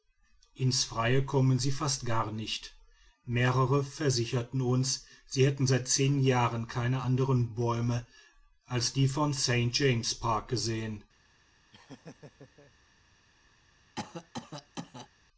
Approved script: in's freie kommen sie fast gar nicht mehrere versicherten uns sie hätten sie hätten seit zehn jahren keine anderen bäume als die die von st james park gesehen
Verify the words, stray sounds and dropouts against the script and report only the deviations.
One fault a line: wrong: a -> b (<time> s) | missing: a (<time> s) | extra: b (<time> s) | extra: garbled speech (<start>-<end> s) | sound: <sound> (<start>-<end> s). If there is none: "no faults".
missing: sie hätten (5.7 s)
missing: die (9.1 s)
sound: laugh (11.7-12.7 s)
sound: cough (14.0-15.1 s)